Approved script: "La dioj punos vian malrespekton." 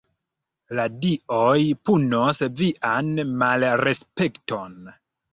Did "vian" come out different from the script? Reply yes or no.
no